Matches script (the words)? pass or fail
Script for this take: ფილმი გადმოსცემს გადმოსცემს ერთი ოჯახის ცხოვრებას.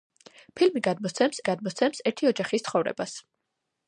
pass